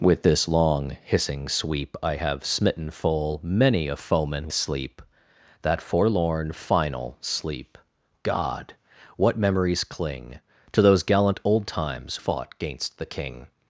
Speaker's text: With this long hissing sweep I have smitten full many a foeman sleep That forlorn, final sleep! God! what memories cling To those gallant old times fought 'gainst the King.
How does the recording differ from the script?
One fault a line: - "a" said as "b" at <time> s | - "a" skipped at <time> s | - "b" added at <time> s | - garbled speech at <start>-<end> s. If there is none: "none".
none